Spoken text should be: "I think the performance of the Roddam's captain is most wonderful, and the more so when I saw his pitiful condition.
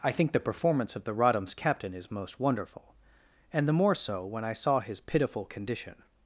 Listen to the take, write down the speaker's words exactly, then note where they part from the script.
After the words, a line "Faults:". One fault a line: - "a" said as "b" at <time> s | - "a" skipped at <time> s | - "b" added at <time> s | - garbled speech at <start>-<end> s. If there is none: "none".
"I think the performance of the Roddam's captain is most wonderful, and the more so when I saw his pitiful condition.
Faults:
none